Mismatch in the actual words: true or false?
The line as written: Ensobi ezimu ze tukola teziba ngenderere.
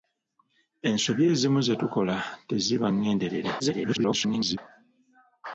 true